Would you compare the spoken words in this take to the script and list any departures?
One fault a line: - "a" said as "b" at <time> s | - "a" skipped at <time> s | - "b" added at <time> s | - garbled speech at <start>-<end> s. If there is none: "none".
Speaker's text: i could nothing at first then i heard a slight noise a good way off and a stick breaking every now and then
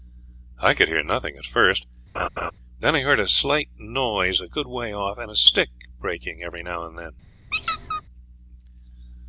- "hear" added at 0.9 s